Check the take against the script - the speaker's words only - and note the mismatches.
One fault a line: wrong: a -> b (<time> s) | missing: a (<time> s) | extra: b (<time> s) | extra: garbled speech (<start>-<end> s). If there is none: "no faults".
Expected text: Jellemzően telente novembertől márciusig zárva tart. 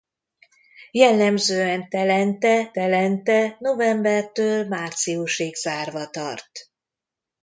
extra: telente (2.7 s)